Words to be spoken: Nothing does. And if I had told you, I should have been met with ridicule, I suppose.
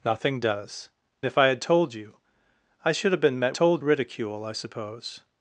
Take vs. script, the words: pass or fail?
fail